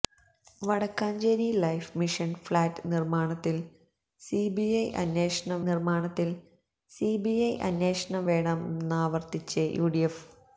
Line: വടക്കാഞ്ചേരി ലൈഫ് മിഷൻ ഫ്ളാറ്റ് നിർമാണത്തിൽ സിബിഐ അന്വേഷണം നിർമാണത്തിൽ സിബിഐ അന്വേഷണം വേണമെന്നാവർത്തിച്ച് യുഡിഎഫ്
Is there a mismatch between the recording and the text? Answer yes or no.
no